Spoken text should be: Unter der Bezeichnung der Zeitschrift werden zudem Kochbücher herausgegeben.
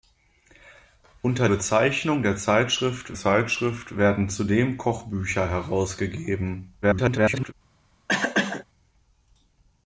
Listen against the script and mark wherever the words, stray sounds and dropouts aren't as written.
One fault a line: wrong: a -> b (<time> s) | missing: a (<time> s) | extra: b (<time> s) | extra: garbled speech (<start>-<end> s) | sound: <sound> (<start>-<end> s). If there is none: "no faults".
missing: der (1.5 s)
extra: Zeitschrift (3.1 s)
extra: garbled speech (6.8-7.5 s)
sound: cough (8.1-8.7 s)